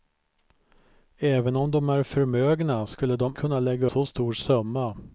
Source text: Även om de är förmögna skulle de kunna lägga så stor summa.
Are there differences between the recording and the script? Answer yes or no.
no